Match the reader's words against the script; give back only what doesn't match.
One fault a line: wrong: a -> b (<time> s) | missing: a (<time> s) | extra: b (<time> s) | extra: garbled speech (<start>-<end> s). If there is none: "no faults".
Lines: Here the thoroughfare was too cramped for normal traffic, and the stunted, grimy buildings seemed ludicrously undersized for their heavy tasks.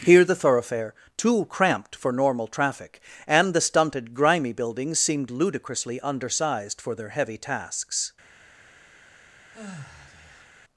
missing: was (0.9 s)